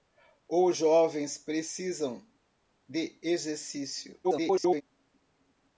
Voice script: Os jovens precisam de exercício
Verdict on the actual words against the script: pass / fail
fail